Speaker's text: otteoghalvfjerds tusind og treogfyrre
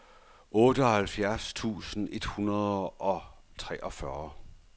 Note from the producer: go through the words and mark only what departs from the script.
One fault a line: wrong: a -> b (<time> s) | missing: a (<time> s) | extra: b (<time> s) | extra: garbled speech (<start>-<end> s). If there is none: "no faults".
extra: et hundrede (2.1 s)